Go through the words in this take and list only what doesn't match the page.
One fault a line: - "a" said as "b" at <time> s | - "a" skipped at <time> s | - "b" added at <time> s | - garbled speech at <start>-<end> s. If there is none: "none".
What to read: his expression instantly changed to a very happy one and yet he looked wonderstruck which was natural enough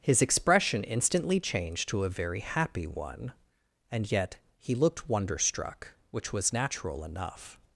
none